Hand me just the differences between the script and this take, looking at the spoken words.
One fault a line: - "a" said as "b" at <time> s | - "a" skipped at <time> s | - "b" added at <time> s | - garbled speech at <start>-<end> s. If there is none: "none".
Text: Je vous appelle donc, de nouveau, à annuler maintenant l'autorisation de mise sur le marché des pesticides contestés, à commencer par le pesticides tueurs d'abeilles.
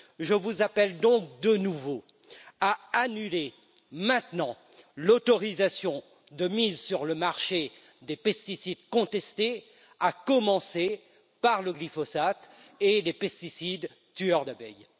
- "glyphosate et les" added at 11.7 s